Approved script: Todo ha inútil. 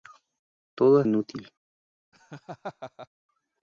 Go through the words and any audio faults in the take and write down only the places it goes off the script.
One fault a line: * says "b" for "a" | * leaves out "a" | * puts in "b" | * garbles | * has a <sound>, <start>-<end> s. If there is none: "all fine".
* has a laugh, 2.1-3.1 s